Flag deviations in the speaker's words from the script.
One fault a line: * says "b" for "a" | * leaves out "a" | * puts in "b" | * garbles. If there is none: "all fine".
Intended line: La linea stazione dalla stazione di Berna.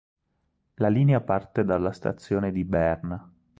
* says "parte" for "stazione"